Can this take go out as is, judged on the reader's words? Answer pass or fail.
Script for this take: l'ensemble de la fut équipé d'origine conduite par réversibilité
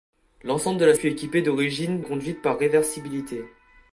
pass